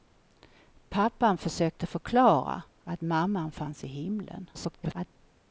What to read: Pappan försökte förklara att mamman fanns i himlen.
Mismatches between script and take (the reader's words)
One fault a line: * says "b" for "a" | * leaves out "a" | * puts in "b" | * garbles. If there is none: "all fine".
* garbles